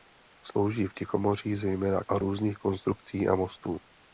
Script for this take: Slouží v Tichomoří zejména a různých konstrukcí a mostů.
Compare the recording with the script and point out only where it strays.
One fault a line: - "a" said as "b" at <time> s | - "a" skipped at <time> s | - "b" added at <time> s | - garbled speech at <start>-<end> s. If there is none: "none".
none